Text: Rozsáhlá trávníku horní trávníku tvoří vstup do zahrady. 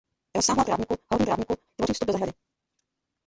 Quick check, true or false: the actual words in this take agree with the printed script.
true